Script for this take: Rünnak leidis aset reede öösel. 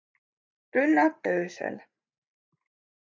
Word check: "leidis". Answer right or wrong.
wrong